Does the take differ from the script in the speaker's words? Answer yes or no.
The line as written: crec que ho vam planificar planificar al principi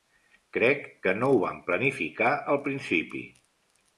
yes